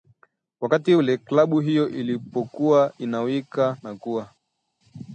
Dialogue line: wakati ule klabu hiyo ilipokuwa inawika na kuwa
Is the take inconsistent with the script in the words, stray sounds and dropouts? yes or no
no